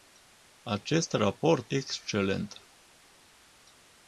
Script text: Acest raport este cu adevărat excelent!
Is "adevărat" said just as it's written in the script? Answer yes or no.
no